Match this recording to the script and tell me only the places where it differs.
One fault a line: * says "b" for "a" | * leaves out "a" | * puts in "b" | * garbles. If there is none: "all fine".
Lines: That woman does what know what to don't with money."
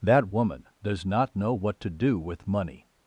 * says "not" for "what"
* says "do" for "don't"